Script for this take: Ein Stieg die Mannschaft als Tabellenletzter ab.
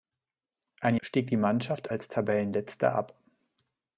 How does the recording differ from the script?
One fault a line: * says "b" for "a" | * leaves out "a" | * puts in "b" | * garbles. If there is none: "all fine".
all fine